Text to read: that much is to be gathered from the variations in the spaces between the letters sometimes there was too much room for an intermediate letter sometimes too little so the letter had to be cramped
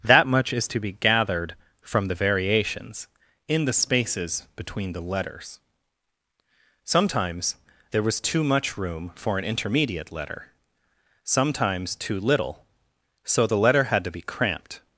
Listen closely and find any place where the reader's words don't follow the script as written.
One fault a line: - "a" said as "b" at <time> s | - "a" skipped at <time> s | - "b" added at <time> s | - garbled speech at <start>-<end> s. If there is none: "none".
none